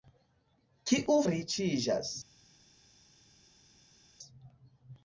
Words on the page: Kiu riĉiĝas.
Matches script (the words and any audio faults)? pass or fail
pass